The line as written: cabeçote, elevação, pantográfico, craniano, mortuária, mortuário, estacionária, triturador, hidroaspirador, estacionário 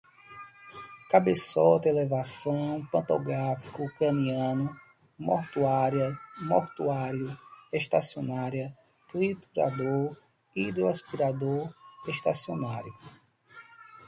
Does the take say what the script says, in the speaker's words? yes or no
yes